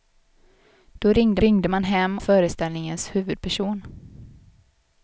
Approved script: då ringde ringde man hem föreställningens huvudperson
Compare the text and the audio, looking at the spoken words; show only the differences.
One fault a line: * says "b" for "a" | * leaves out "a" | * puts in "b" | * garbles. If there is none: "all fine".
all fine